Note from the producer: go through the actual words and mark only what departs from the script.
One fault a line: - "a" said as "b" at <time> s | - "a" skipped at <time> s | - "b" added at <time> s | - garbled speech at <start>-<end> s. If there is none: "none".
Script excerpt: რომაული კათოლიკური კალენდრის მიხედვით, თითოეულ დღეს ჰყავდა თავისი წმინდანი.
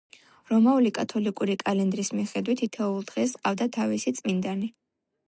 none